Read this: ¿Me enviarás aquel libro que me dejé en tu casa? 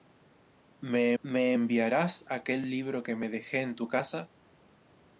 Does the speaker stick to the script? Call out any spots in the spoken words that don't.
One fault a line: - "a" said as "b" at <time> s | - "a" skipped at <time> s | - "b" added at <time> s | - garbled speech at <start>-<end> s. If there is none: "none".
- "me" added at 1.2 s